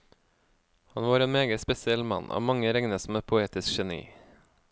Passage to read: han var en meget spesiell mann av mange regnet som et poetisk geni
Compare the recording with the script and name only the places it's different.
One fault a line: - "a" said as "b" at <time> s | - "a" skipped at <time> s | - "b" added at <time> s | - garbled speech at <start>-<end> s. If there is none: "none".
none